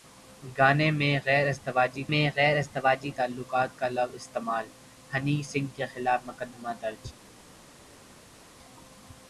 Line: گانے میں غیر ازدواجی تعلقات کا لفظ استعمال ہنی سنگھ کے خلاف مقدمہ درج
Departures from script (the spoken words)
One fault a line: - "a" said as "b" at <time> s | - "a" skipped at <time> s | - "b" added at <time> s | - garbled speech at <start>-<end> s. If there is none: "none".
- "میں غیر ازدواجی" added at 2.1 s